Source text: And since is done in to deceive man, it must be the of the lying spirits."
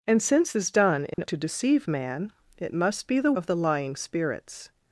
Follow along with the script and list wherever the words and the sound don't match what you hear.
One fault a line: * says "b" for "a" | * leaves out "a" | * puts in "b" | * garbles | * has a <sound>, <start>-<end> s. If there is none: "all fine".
* has a dropout, 1.1-1.2 s